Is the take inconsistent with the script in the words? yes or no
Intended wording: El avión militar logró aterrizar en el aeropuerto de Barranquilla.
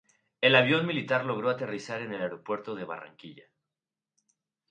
no